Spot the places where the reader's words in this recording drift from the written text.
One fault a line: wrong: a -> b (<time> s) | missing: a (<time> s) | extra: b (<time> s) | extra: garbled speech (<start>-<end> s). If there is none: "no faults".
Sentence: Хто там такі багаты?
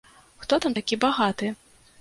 no faults